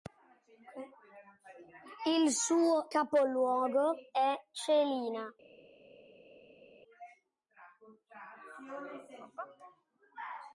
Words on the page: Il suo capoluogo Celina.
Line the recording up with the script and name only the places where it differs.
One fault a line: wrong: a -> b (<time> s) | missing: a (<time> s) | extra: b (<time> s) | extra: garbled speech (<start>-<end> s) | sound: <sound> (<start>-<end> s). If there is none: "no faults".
extra: è (4.1 s)